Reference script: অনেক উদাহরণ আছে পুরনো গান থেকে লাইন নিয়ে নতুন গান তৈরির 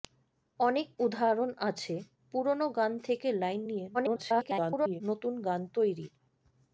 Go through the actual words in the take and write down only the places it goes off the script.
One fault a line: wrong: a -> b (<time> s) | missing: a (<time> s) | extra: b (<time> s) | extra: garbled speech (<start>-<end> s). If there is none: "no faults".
extra: garbled speech (3.9-5.0 s)